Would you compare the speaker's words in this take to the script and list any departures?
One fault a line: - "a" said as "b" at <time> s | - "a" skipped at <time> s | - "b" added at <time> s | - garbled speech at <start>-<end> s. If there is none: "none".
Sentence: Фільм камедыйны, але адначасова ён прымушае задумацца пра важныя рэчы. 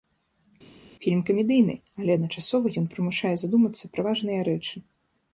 none